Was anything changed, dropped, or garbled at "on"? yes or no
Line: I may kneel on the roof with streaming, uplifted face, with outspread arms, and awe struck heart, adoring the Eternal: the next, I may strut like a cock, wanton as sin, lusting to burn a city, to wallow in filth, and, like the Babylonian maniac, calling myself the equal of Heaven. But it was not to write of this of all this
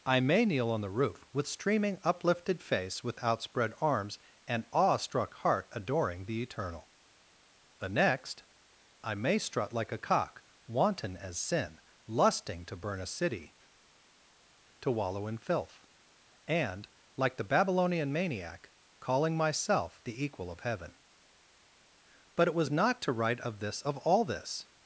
no